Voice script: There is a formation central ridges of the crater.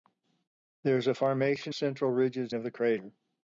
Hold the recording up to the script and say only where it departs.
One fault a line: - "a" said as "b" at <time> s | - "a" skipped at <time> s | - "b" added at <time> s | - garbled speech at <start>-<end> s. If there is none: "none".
none